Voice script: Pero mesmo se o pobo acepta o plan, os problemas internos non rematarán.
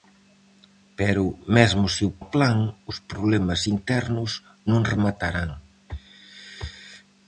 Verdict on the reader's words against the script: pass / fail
fail